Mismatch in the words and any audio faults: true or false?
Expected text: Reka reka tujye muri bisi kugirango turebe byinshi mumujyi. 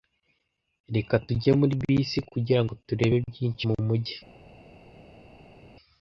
true